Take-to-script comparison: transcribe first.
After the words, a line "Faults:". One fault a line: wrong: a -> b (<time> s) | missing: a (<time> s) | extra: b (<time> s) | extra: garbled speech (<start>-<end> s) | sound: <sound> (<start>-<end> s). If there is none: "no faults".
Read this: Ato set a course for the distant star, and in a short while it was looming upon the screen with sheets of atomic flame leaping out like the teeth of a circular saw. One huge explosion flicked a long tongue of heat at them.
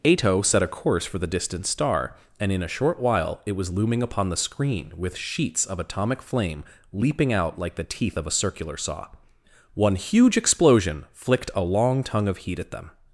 Ato set a course for the distant star, and in a short while it was looming upon the screen with sheets of atomic flame leaping out like the teeth of a circular saw. One huge explosion flicked a long tongue of heat at them.
Faults:
no faults